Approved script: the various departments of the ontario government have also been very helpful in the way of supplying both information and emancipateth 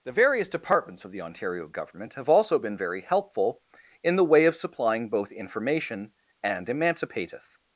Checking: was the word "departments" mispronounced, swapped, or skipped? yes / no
no